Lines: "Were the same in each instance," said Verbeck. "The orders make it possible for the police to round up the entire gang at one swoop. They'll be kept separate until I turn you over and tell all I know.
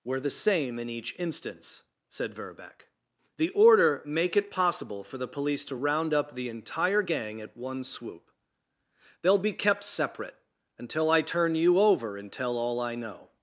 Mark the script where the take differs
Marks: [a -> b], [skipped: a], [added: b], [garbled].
"Were the same in each instance," said Verbeck. "The [orders -> order] make it possible for the police to round up the entire gang at one swoop. They'll be kept separate until I turn you over and tell all I know.